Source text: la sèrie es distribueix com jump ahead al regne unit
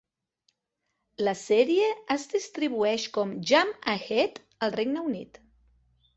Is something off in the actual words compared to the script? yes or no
no